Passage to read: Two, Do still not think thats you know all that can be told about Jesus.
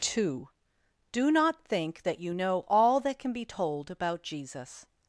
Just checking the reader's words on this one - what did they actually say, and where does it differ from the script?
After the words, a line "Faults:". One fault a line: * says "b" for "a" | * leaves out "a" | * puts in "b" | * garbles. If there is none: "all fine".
Two, Do not think that you know all that can be told about Jesus.
Faults:
* leaves out "still"
* says "that" for "thats"